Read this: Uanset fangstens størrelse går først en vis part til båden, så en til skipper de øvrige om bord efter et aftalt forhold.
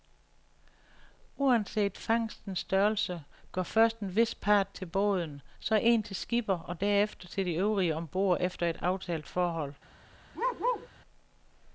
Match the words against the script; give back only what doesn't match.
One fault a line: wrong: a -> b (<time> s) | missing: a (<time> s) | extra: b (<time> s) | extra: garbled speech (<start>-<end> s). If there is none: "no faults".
extra: og derefter til (6.6 s)